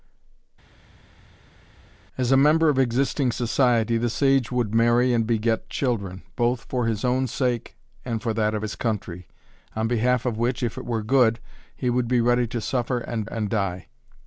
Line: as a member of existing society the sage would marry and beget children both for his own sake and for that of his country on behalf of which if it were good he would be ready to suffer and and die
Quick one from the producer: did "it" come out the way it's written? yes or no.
yes